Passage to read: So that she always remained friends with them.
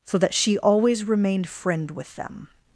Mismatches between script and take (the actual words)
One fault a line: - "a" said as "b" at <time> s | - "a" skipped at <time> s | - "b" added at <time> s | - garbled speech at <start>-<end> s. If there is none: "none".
- "friends" said as "friend" at 1.5 s